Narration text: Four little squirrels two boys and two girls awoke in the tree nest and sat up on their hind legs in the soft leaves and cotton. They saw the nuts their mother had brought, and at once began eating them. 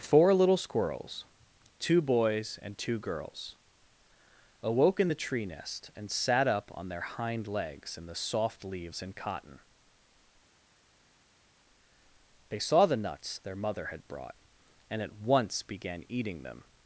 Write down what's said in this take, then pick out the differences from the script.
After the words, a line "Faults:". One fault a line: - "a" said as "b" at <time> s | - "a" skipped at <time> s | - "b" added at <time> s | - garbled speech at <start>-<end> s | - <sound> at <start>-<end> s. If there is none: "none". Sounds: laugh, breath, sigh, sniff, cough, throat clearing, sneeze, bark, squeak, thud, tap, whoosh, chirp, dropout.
Four little squirrels two boys and two girls awoke in the tree nest and sat up on their hind legs in the soft leaves and cotton. They saw the nuts their mother had brought, and at once began eating them.
Faults:
none